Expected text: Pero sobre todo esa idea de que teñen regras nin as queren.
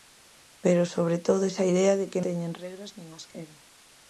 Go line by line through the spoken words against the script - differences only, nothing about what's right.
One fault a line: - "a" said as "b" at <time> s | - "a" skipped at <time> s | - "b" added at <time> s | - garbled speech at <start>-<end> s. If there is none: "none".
none